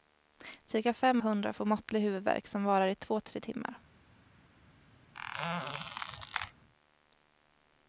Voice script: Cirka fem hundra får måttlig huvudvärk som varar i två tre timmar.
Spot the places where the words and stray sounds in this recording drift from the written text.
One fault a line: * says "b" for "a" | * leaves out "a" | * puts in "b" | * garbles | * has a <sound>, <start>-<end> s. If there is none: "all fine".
* has a squeak, 5.1-6.5 s